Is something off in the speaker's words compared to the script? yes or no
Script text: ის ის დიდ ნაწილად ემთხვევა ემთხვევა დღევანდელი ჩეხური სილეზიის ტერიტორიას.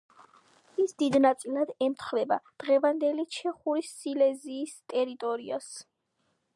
yes